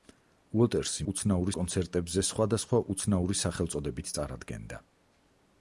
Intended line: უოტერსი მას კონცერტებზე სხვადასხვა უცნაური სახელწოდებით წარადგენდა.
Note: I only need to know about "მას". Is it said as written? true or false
false